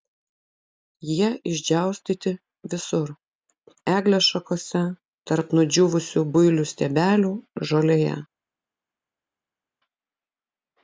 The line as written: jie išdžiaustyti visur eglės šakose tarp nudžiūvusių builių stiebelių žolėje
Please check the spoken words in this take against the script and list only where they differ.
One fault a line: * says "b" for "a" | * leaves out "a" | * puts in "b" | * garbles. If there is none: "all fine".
all fine